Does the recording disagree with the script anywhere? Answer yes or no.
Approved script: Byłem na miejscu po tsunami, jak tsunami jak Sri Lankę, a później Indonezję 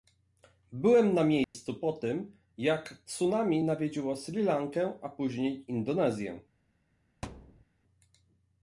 yes